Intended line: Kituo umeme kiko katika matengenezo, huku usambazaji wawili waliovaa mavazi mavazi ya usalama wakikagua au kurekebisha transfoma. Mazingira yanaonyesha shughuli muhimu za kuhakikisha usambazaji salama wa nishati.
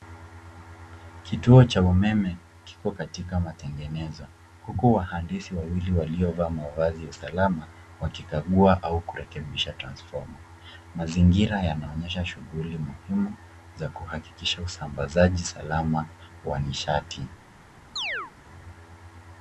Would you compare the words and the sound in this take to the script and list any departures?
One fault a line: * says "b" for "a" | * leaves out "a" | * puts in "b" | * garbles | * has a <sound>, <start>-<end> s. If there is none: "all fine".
* puts in "cha"
* says "wahandisi" for "usambazaji"
* leaves out "mavazi"
* has a chirp, 18.0-18.3 s